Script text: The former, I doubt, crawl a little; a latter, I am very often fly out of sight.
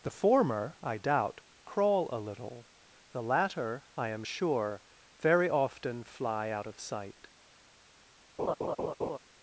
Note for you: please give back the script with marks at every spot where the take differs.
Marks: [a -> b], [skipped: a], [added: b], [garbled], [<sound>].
The former, I doubt, crawl a little; [a -> the] latter, I am [added: sure] very often fly out of sight. [laugh]